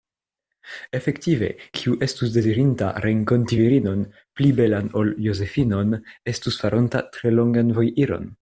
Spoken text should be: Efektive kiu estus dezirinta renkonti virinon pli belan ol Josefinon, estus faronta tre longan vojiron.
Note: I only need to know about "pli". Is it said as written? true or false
true